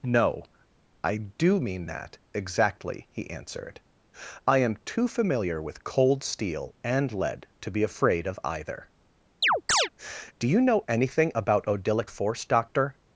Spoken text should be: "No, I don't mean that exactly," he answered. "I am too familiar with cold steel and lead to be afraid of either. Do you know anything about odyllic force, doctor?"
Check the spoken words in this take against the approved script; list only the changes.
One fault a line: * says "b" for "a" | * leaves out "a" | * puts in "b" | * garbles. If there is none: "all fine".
* says "do" for "don't"